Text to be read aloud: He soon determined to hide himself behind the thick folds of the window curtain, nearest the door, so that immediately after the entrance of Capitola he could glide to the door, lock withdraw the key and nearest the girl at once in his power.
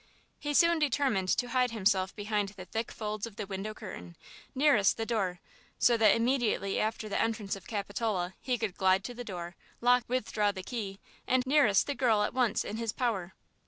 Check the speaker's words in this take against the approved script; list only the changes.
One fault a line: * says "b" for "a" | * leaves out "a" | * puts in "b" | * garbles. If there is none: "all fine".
all fine